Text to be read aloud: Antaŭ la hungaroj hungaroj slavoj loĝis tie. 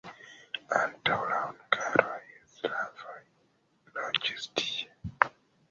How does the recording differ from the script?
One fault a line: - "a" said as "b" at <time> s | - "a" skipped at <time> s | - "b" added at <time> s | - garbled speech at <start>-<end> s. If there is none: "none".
- "hungaroj" skipped at 2.2 s